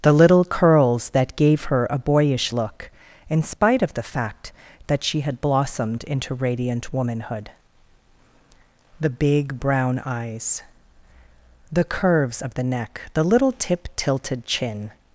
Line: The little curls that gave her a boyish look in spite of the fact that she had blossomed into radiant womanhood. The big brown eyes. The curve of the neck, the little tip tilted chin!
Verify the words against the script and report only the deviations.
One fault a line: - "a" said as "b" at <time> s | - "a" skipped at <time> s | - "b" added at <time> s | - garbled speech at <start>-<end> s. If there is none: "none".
- "curve" said as "curves" at 11.8 s